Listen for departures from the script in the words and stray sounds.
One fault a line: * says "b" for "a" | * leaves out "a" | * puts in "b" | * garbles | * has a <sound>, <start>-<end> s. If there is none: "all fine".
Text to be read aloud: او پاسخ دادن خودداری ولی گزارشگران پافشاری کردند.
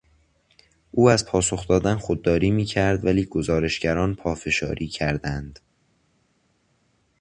* puts in "از"
* puts in "میکرد"